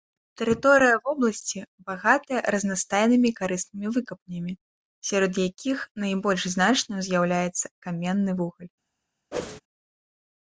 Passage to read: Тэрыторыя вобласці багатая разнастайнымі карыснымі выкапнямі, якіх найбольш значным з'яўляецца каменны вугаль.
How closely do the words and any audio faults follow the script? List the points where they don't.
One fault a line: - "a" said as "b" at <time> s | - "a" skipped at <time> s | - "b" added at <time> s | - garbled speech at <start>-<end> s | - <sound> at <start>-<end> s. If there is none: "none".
- "сярод" added at 5.1 s
- whoosh at 9.3-9.6 s